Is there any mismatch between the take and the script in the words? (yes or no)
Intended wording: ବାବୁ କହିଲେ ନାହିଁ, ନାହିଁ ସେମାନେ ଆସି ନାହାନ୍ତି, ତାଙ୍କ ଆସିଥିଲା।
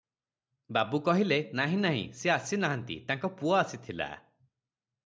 yes